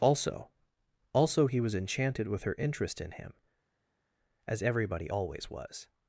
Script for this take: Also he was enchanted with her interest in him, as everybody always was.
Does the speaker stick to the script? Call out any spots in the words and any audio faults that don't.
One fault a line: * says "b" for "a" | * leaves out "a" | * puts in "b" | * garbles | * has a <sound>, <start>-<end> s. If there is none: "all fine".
* puts in "also"